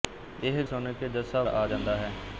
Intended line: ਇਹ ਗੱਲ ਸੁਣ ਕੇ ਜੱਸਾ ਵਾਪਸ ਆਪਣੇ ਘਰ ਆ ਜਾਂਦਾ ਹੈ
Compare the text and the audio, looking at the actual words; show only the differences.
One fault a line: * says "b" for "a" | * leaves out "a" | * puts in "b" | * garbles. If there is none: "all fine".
* leaves out "ਗੱਲ"
* leaves out "ਵਾਪਸ ਆਪਣੇ ਘਰ"